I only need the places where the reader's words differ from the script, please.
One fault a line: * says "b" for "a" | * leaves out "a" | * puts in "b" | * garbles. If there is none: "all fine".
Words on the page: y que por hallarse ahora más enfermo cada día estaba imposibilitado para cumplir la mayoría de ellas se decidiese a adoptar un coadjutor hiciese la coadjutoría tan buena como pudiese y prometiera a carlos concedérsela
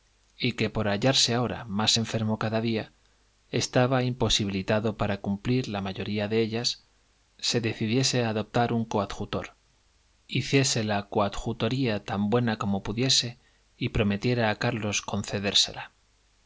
all fine